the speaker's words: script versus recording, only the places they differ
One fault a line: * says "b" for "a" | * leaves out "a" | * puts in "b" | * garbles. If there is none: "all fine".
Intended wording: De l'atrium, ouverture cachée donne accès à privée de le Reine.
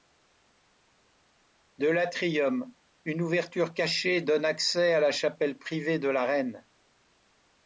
* puts in "une"
* puts in "la chapelle"
* says "la" for "le"